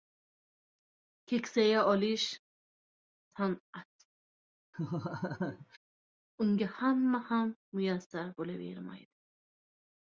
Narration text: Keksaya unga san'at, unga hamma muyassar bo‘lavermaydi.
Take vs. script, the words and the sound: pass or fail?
fail